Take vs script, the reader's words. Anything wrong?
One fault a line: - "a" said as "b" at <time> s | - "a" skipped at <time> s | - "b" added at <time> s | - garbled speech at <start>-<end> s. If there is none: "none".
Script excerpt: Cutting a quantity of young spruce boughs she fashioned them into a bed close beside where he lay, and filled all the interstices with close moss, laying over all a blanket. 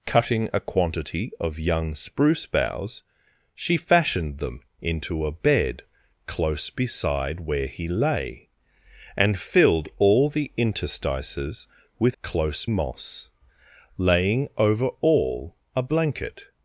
none